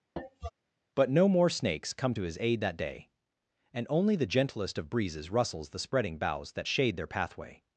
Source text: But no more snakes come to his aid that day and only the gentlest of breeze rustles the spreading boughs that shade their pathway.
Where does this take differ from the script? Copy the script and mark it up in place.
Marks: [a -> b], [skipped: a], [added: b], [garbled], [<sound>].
[cough] But no more snakes come to his aid that day and only the gentlest of [breeze -> breezes] rustles the spreading boughs that shade their pathway.